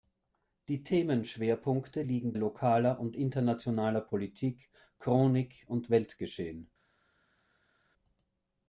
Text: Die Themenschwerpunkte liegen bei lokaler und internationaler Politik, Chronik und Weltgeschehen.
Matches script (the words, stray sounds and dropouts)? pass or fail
fail